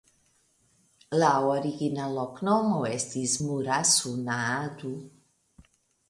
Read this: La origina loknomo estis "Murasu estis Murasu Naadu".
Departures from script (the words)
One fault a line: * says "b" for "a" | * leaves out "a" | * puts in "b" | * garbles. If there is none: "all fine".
* leaves out "estis Murasu"